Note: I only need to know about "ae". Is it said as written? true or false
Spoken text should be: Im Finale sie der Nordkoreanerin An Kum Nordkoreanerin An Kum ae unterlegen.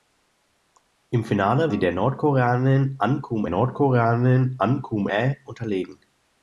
true